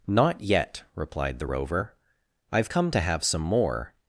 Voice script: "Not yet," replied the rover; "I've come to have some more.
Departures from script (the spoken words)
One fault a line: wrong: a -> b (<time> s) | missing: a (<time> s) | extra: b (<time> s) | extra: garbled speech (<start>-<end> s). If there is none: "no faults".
no faults